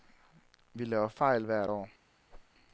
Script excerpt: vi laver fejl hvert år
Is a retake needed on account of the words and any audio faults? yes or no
yes